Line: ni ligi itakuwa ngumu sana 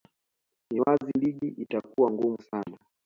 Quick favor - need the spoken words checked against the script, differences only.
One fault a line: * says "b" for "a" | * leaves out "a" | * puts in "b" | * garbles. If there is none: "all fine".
* puts in "wazi"